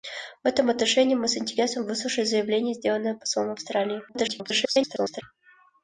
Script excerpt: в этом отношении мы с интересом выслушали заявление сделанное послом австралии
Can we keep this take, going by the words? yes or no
no